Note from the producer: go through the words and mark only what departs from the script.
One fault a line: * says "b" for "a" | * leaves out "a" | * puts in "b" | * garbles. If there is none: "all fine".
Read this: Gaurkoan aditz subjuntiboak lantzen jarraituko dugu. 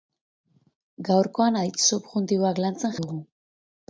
* leaves out "jarraituko"